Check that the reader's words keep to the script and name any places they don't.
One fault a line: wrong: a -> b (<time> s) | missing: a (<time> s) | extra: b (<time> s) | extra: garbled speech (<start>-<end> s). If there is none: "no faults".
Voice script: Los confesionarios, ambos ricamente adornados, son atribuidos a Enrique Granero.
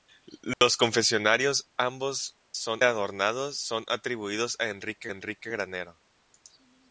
wrong: ricamente -> son (2.5 s)
extra: Enrique (5.1 s)